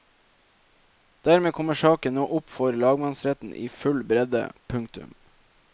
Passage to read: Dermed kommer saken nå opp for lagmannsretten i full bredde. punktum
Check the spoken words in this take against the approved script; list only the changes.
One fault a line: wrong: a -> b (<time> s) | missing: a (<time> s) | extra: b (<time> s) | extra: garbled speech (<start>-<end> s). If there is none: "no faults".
no faults